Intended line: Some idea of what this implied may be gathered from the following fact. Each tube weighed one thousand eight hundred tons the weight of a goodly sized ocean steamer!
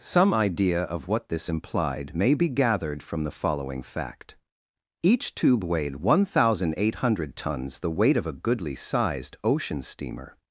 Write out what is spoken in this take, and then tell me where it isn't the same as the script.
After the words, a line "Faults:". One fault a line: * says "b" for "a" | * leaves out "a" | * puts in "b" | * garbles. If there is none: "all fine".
Some idea of what this implied may be gathered from the following fact. Each tube weighed one thousand eight hundred tons the weight of a goodly sized ocean steamer!
Faults:
all fine